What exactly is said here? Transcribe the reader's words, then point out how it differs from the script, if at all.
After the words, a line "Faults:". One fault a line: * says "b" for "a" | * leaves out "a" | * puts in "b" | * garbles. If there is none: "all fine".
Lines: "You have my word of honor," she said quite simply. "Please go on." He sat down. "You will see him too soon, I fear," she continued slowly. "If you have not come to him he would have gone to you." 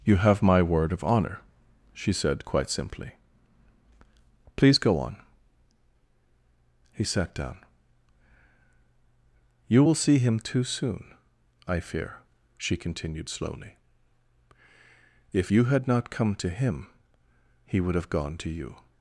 "You have my word of honor," she said quite simply. "Please go on." He sat down. "You will see him too soon, I fear," she continued slowly. "If you had not come to him he would have gone to you."
Faults:
* says "had" for "have"